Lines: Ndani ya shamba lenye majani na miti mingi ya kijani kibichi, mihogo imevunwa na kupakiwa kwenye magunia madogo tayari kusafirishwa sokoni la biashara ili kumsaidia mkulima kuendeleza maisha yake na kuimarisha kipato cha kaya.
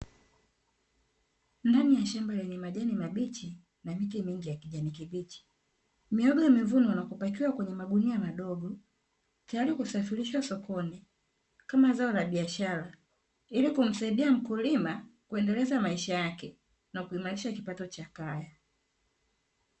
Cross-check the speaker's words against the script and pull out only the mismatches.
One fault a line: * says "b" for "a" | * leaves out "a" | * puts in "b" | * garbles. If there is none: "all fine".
* puts in "mabichi"
* puts in "kama zao"